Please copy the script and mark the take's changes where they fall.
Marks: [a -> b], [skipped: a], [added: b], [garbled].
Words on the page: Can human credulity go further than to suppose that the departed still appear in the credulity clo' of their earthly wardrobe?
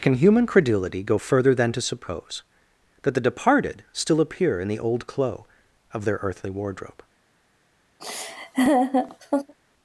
Can human credulity go further than to suppose that the departed still appear in the [credulity -> old] clo' of their earthly wardrobe?